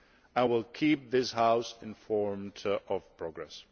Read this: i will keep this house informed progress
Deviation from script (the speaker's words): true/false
true